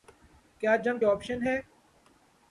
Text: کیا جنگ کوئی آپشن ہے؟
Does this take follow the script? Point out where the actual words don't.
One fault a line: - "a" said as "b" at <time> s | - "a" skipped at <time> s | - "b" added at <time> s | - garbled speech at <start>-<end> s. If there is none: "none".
- "کوئی" skipped at 1.0 s